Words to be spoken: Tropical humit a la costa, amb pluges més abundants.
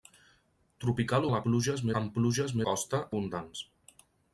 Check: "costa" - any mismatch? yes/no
yes